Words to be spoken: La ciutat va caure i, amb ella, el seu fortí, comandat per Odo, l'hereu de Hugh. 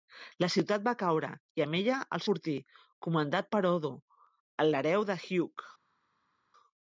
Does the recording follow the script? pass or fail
fail